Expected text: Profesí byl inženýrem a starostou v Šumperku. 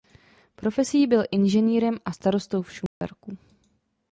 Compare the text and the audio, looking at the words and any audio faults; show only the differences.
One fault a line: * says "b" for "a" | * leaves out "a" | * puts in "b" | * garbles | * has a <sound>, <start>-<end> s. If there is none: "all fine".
* has a dropout, 2.9-3.0 s